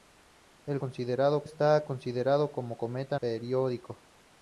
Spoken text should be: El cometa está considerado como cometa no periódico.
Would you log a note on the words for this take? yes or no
yes